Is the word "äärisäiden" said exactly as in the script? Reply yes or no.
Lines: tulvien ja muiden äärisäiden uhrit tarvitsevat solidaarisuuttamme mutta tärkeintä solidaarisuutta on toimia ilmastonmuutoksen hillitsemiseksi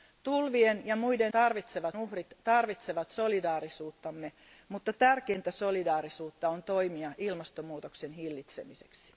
no